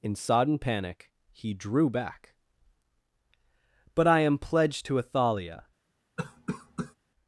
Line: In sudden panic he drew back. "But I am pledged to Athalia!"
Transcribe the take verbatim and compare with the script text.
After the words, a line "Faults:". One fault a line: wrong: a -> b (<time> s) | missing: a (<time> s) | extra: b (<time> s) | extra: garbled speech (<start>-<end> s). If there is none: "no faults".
In sodden panic he drew back. "But I am pledged to Athalia!"
Faults:
wrong: sudden -> sodden (0.1 s)